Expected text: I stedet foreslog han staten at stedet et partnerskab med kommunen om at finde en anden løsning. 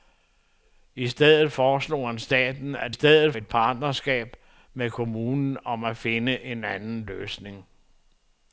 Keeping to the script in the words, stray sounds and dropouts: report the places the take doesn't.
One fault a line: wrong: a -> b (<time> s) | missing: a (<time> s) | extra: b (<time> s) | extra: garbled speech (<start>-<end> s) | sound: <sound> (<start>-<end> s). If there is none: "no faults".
no faults